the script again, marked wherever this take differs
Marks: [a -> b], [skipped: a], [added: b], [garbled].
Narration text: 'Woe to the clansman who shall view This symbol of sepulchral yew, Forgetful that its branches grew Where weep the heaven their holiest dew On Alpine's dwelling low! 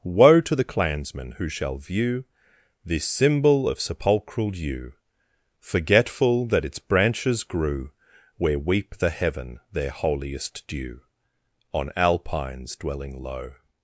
'Woe to the clansman who shall view This symbol of sepulchral yew, Forgetful that its branches grew Where weep the heaven their holiest dew On Alpine's dwelling low!